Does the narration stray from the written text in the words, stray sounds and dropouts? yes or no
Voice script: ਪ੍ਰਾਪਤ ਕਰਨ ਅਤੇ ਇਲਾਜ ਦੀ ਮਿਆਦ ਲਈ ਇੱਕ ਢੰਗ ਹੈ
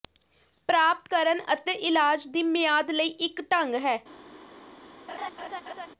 yes